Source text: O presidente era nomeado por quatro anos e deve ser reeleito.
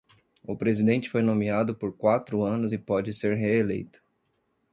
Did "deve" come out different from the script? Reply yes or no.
yes